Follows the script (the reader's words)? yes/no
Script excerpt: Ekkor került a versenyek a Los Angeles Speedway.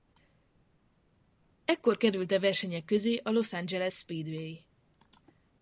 no